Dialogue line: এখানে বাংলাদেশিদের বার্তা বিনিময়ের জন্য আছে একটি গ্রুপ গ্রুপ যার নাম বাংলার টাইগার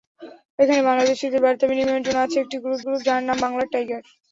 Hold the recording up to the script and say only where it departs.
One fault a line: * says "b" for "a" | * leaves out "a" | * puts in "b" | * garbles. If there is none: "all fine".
all fine